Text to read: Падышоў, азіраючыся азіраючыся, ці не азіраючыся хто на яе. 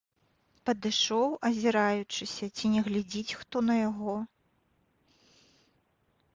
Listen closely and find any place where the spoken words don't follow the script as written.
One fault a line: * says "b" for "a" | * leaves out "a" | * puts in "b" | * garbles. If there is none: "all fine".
* leaves out "азіраючыся"
* says "глядзіць" for "азіраючыся"
* says "яго" for "яе"